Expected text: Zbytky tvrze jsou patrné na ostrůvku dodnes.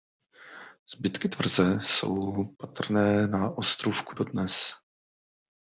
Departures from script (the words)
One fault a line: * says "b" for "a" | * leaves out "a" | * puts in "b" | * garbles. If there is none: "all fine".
all fine